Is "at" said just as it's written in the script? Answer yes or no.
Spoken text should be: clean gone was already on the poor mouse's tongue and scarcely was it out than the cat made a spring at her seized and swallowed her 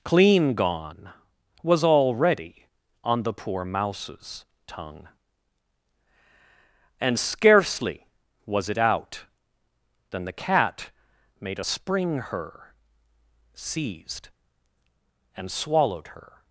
no